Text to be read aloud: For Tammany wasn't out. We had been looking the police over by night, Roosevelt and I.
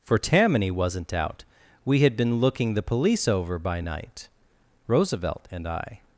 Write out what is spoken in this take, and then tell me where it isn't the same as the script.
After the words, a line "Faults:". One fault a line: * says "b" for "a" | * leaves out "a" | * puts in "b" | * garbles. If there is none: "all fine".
For Tammany wasn't out. We had been looking the police over by night, Roosevelt and I.
Faults:
all fine